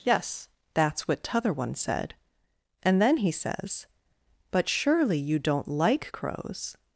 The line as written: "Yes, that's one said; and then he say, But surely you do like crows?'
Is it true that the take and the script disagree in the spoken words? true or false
true